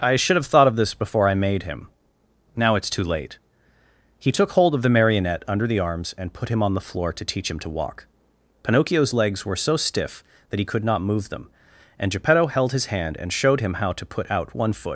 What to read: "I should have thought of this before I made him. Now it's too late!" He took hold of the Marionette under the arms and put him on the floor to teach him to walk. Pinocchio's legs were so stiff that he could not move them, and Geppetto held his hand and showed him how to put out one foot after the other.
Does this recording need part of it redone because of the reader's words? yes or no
yes